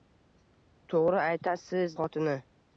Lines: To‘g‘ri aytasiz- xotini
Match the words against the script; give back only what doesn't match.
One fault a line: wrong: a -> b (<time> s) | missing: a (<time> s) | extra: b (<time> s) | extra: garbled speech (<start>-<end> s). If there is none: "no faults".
no faults